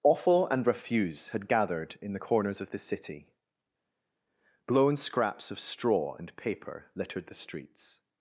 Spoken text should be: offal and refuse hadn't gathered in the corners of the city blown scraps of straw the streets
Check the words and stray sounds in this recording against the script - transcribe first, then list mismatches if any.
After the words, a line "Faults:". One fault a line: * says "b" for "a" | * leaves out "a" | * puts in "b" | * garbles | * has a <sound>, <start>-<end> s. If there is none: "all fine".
offal and refuse had gathered in the corners of the city blown scraps of straw and paper littered the streets
Faults:
* says "had" for "hadn't"
* puts in "and paper littered"